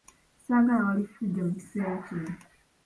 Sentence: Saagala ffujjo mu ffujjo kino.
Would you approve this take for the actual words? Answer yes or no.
no